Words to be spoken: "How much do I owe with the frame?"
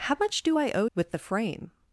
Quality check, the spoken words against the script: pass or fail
pass